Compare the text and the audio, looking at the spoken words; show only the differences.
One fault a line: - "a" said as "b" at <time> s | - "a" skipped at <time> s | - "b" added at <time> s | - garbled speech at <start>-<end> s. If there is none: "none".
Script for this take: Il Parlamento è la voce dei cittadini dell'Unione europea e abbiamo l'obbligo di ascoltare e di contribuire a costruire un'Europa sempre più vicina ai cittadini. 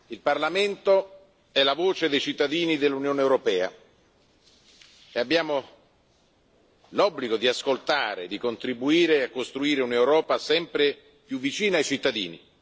none